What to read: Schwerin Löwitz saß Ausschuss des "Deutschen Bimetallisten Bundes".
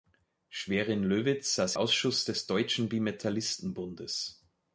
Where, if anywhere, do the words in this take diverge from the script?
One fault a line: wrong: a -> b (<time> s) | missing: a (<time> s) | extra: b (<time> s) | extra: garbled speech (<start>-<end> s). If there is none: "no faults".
no faults